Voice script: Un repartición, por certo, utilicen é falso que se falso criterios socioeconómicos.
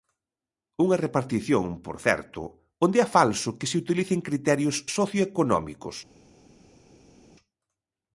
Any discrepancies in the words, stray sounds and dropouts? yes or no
yes